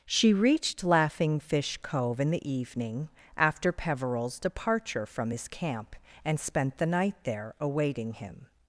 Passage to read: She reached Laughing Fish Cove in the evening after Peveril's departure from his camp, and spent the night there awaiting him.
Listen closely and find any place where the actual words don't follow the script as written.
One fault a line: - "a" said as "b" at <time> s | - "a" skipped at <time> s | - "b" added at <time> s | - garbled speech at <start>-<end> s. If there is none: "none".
none